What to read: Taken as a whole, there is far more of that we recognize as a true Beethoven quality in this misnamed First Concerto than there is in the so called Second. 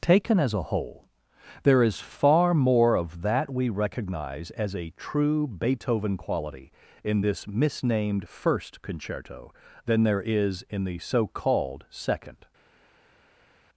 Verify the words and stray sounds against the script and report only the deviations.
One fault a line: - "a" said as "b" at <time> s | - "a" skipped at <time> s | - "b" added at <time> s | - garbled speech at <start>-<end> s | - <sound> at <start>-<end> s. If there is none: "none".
none